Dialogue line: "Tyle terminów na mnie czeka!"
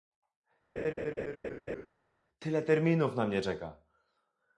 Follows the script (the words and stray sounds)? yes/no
no